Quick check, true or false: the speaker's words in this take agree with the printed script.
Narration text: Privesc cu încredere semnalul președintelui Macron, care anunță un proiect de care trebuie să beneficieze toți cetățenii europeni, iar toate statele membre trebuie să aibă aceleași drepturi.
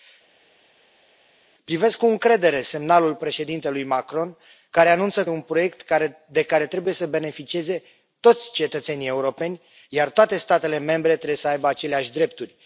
true